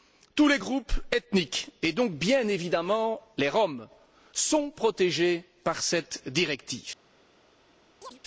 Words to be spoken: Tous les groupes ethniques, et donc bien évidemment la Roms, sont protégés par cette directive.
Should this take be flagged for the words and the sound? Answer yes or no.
yes